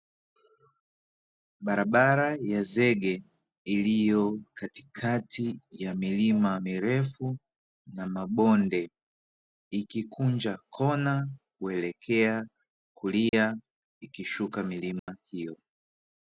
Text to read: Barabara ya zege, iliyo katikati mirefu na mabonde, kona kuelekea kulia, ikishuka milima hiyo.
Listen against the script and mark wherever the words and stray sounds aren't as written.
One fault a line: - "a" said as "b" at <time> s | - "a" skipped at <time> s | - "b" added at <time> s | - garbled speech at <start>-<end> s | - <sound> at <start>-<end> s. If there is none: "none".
- "ya milima" added at 5.7 s
- "ikikunja" added at 9.7 s
- dropout at 13.3-13.3 s
- dropout at 15.0-15.1 s